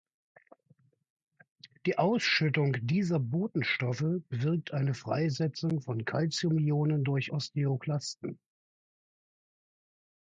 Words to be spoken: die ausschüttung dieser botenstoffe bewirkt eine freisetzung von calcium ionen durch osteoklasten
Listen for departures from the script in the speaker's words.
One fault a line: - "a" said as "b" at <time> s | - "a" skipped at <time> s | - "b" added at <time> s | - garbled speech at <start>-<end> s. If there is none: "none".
none